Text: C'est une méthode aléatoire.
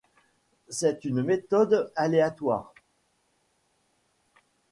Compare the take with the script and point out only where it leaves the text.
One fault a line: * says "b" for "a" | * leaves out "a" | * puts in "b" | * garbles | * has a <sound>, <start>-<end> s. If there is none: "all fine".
all fine